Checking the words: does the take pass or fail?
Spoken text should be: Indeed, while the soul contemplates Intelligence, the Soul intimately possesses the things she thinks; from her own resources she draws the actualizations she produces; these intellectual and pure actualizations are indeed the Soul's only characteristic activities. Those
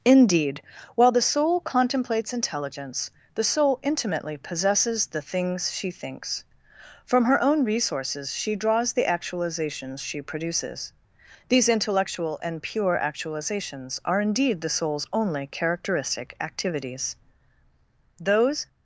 pass